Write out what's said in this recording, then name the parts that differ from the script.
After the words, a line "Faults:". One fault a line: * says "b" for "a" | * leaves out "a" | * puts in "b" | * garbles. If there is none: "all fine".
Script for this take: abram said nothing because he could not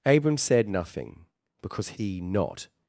abram said nothing because he not
Faults:
* leaves out "could"